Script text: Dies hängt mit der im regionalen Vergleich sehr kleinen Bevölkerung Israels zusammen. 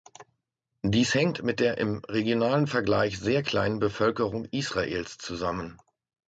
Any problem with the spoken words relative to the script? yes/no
no